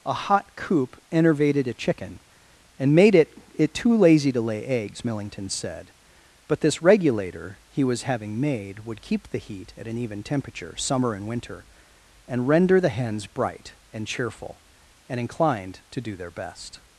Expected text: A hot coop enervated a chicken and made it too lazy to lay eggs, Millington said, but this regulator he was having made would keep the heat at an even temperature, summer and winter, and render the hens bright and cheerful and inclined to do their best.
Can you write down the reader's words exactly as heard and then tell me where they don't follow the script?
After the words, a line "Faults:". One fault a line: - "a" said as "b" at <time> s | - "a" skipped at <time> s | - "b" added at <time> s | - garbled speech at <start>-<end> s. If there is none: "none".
A hot coop enervated a chicken and made it it too lazy to lay eggs, Millington said, but this regulator he was having made would keep the heat at an even temperature, summer and winter, and render the hens bright and cheerful and inclined to do their best.
Faults:
- "it" added at 3.5 s